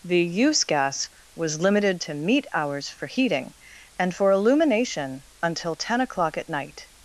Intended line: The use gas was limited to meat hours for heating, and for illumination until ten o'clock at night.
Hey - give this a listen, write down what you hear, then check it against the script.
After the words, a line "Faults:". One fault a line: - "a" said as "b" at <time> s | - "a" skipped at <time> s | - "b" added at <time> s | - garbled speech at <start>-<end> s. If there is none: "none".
The use gas was limited to meat hours for heating, and for illumination until ten o'clock at night.
Faults:
none